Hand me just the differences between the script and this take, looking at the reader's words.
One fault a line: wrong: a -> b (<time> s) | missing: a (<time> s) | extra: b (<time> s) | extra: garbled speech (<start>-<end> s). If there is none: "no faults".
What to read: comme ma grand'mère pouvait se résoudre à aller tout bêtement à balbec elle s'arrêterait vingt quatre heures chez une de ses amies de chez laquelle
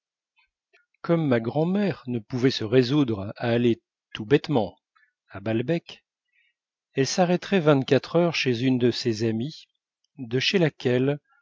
extra: ne (2.1 s)